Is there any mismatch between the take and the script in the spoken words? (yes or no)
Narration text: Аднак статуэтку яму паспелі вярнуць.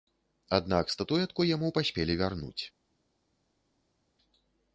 no